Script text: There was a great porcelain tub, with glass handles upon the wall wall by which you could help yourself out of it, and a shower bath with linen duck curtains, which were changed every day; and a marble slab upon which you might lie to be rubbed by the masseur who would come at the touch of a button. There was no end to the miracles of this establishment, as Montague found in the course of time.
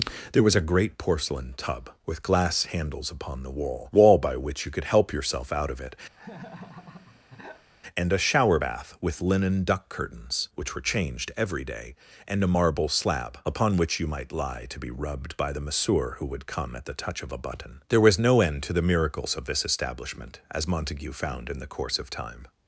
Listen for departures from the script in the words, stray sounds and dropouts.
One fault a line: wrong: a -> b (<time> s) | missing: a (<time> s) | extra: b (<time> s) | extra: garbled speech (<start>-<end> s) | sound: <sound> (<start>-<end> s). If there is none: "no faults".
sound: laugh (6.1-7.7 s)